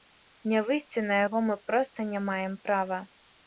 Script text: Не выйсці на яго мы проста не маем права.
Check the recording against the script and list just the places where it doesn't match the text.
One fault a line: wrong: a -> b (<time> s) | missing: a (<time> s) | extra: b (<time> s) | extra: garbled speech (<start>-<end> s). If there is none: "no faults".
no faults